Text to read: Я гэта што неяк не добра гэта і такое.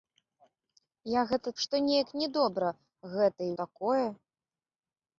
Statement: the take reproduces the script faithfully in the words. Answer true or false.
true